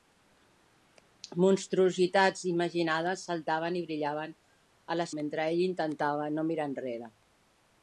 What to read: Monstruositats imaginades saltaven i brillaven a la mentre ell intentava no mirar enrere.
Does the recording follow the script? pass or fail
pass